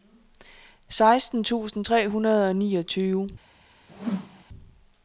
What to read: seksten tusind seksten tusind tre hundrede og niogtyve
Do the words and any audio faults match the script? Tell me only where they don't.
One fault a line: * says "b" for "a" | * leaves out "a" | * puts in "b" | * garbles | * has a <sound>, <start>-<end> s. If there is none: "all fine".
* leaves out "seksten tusind"
* has a whoosh, 3.9-4.4 s